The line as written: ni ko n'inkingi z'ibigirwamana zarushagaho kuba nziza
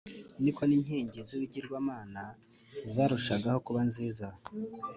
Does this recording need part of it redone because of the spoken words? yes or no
no